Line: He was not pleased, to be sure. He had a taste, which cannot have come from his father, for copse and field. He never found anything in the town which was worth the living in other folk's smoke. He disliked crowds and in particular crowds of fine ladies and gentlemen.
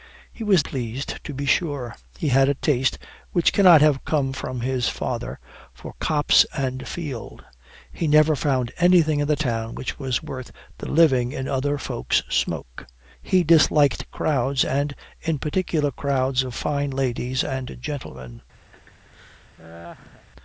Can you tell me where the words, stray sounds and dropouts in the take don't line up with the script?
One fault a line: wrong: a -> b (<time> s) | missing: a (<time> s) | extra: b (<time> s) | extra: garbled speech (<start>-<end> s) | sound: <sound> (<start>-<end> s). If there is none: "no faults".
missing: not (0.6 s)
sound: laugh (18.7-20.3 s)